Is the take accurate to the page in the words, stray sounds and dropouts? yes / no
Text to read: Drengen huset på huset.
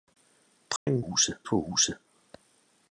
no